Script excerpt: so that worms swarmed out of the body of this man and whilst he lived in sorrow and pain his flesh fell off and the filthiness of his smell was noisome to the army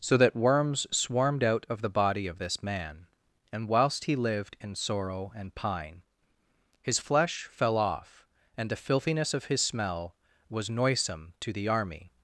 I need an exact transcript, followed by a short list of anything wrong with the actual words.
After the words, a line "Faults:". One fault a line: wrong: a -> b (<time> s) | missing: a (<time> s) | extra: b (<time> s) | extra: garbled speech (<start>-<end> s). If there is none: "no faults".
so that worms swarmed out of the body of this man and whilst he lived in sorrow and pine his flesh fell off and the filthiness of his smell was noisome to the army
Faults:
wrong: pain -> pine (5.6 s)